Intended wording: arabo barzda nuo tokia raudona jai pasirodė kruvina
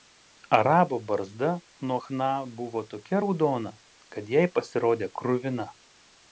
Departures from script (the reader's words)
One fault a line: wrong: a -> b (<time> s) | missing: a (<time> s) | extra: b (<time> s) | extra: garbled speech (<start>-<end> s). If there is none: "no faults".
extra: chna buvo (2.0 s)
extra: kad (4.1 s)